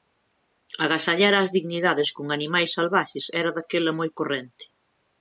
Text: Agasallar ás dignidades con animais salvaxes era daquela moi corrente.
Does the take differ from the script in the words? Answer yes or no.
no